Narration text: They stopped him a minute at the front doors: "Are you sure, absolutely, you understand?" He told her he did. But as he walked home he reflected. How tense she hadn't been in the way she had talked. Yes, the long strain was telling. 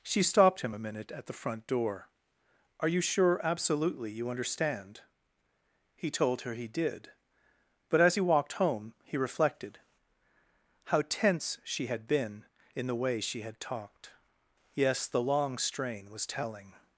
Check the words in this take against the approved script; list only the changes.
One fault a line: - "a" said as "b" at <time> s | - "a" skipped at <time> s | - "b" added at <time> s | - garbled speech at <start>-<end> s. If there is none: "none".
- "They" said as "She" at 0.0 s
- "doors" said as "door" at 1.7 s
- "hadn't" said as "had" at 11.9 s